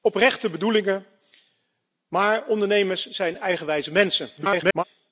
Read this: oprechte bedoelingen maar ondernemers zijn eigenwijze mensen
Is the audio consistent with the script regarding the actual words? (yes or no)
no